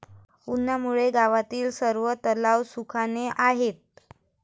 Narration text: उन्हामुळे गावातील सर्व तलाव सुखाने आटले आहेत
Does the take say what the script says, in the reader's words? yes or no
no